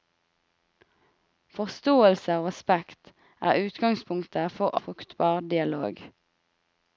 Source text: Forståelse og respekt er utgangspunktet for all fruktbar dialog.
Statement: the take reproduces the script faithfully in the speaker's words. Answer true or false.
false